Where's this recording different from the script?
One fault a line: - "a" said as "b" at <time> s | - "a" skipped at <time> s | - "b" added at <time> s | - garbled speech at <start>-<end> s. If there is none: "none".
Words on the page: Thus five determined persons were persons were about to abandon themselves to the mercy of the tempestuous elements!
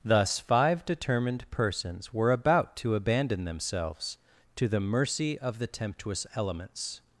- "persons were" skipped at 2.3 s